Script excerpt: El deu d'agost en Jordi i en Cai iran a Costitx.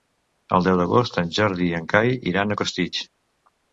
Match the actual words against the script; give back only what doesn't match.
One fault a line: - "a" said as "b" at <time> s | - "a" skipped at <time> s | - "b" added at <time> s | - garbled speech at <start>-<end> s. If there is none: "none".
none